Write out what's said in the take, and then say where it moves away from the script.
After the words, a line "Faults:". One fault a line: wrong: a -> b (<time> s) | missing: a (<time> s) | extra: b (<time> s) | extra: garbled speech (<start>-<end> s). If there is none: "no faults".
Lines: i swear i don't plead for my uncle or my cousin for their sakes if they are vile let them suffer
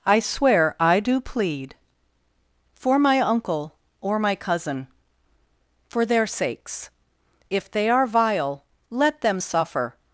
i swear i do plead for my uncle or my cousin for their sakes if they are vile let them suffer
Faults:
wrong: don't -> do (1.0 s)